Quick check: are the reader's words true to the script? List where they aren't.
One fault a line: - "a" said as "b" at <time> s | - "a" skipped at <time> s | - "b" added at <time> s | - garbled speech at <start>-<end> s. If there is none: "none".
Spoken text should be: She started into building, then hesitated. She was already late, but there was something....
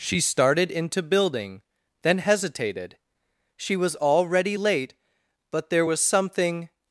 none